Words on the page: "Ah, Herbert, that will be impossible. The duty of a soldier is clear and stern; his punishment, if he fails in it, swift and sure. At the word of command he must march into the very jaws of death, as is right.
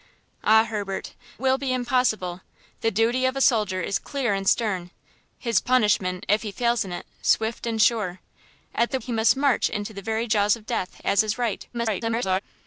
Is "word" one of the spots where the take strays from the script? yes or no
yes